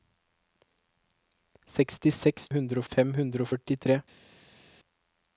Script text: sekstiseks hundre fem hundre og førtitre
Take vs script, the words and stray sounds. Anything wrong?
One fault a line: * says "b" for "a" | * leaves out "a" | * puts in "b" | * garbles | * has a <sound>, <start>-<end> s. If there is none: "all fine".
all fine